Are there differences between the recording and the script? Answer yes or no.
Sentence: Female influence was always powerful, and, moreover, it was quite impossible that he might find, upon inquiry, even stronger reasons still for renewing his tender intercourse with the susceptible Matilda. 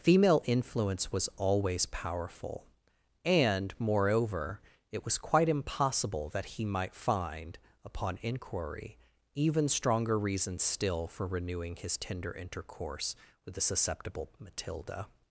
no